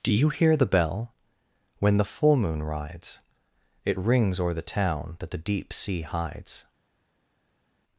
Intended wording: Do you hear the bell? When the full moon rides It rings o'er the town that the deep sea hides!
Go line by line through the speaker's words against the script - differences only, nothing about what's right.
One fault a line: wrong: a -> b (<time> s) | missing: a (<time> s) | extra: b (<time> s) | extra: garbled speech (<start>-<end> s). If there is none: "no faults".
no faults